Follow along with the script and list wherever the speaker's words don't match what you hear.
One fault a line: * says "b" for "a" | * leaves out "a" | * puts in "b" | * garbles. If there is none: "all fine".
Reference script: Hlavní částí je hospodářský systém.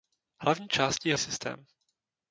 * leaves out "hospodářský"